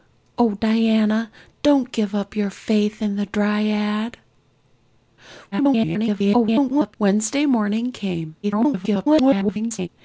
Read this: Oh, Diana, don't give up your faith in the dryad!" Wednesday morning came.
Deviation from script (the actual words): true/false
true